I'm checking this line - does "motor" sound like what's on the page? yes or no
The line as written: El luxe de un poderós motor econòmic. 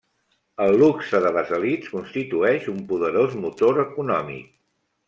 yes